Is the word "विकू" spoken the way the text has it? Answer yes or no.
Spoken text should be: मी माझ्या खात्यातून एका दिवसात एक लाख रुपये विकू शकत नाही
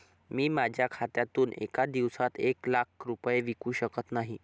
yes